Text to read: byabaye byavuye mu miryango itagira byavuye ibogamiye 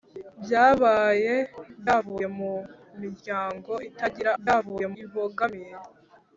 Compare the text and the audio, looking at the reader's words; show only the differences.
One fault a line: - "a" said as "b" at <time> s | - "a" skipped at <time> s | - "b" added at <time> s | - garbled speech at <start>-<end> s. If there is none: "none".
none